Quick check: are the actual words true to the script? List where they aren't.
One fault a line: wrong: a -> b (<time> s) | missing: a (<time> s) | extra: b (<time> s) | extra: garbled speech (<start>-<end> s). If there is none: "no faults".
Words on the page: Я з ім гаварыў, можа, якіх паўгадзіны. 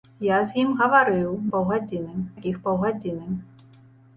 wrong: можа -> паўгадзіны (1.5 s)